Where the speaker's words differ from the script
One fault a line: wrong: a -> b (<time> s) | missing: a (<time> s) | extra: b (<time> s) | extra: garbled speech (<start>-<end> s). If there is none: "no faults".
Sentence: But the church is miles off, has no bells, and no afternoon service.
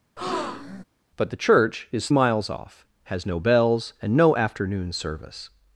no faults